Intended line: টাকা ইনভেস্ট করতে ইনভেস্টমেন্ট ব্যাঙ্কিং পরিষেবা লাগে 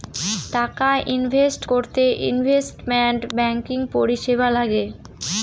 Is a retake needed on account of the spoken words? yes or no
no